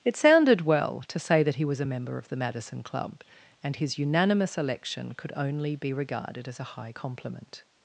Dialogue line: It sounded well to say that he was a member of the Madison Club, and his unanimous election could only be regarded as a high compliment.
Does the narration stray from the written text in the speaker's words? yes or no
no